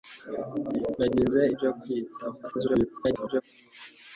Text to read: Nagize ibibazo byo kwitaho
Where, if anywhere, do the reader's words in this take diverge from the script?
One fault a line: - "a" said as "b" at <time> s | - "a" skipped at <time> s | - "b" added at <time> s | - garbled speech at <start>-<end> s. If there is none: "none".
- "ibibazo" skipped at 1.4 s
- garbled speech at 2.4-3.4 s